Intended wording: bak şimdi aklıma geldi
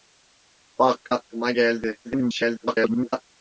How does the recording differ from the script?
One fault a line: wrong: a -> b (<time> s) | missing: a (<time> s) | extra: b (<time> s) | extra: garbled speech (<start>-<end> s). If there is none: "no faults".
missing: şimdi (1.1 s)
extra: garbled speech (2.0-3.3 s)